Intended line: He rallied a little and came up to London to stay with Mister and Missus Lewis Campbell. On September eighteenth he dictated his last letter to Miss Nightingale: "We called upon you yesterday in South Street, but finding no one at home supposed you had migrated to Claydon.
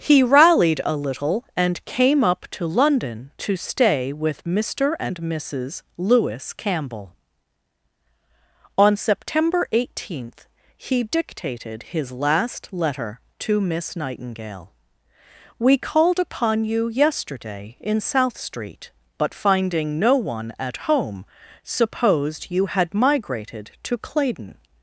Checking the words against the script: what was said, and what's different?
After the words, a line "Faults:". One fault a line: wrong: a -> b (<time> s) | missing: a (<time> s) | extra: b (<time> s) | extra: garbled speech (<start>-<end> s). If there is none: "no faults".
He rallied a little and came up to London to stay with Mister and Missus Lewis Campbell. On September eighteenth he dictated his last letter to Miss Nightingale: "We called upon you yesterday in South Street, but finding no one at home supposed you had migrated to Claydon.
Faults:
no faults